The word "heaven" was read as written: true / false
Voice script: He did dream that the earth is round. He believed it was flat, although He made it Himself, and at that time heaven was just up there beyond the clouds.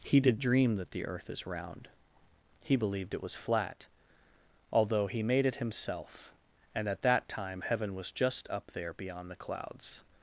true